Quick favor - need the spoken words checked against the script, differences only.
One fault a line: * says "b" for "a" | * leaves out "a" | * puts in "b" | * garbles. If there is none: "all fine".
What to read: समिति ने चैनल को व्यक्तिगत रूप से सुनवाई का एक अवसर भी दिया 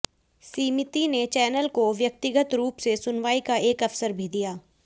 all fine